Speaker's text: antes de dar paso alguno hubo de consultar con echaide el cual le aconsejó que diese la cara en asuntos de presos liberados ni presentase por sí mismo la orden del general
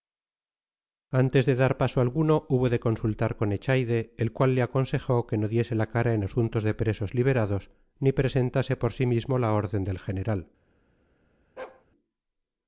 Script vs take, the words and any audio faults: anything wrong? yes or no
yes